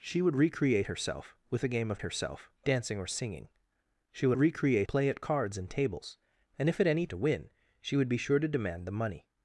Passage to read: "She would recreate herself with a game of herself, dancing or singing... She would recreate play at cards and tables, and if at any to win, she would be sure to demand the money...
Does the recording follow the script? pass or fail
pass